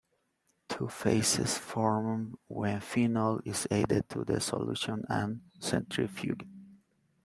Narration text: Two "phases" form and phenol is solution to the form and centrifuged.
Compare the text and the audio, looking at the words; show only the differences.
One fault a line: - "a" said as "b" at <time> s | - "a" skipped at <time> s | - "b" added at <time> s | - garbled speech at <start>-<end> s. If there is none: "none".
- "and" said as "when" at 2.5 s
- "solution" said as "added" at 3.7 s
- "form" said as "solution" at 4.4 s